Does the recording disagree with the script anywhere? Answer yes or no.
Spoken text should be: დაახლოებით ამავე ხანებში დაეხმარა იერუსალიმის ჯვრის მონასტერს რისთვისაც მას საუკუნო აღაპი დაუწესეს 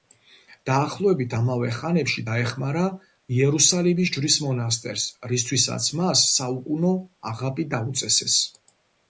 no